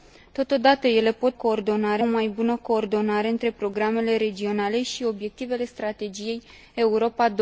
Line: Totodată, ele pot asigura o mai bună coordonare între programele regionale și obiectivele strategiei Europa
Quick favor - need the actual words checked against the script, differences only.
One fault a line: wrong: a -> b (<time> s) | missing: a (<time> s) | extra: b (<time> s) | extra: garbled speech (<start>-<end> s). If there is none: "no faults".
wrong: asigura -> coordonare (1.4 s)